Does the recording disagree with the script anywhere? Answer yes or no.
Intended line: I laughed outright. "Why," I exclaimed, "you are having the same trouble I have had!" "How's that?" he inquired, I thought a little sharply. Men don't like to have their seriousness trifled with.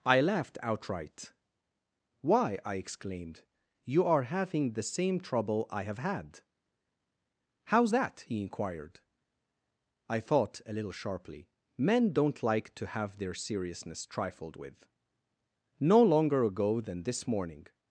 yes